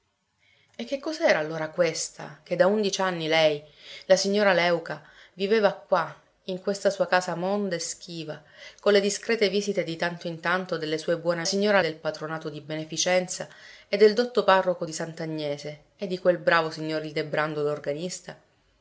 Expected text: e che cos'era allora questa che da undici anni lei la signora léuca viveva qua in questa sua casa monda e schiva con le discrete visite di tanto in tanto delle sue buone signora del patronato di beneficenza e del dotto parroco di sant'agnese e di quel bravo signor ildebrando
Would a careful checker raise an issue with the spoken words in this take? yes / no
no